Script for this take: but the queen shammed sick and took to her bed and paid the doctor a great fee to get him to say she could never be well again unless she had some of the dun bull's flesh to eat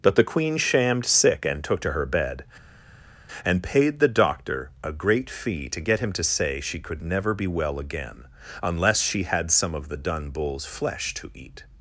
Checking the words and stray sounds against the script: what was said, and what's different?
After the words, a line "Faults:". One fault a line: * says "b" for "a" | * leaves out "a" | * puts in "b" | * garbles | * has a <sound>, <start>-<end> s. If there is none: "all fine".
but the queen shammed sick and took to her bed and paid the doctor a great fee to get him to say she could never be well again unless she had some of the dun bull's flesh to eat
Faults:
all fine